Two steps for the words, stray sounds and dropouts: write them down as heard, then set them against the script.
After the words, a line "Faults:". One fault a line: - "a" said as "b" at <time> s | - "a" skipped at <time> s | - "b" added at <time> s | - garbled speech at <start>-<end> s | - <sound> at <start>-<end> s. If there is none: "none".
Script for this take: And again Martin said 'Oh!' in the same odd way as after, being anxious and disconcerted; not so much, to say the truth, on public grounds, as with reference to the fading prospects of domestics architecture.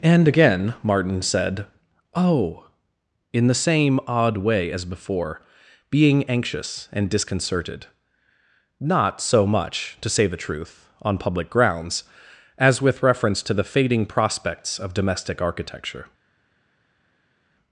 And again Martin said 'Oh!' in the same odd way as before, being anxious and disconcerted; not so much, to say the truth, on public grounds, as with reference to the fading prospects of domestic architecture.
Faults:
- "after" said as "before" at 4.8 s
- "domestics" said as "domestic" at 14.9 s